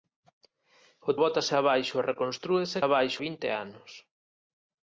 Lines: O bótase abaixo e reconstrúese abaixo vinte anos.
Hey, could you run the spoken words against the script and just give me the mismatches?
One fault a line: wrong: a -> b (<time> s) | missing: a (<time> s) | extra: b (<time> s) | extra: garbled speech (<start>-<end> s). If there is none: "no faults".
no faults